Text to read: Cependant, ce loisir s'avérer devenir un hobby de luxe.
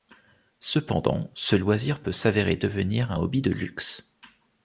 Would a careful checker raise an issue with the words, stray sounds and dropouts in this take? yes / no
yes